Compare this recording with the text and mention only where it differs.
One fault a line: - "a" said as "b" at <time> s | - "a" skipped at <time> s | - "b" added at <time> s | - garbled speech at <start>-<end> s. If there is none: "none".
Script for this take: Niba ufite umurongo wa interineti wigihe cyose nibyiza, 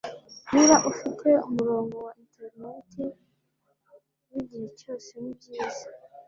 none